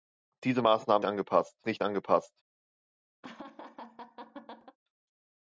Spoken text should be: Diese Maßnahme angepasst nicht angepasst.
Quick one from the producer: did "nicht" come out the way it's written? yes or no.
yes